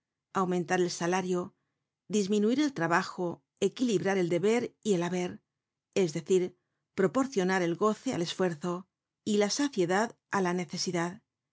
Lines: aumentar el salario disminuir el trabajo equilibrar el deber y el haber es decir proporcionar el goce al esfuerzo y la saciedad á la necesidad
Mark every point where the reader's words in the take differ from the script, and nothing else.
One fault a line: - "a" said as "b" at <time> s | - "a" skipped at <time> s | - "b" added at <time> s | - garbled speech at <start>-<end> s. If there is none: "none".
none